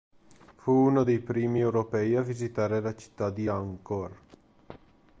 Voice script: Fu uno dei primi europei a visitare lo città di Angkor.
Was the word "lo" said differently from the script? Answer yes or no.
yes